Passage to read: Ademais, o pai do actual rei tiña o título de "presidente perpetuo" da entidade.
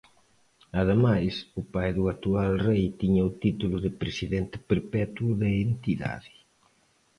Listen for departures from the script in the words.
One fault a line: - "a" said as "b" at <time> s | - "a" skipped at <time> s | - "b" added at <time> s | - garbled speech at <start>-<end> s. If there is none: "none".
none